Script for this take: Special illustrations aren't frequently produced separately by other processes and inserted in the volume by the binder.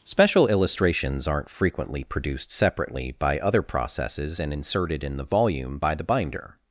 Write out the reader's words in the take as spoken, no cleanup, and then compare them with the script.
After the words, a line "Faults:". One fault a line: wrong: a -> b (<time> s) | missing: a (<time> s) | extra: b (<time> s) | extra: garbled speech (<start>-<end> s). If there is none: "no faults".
Special illustrations aren't frequently produced separately by other processes and inserted in the volume by the binder.
Faults:
no faults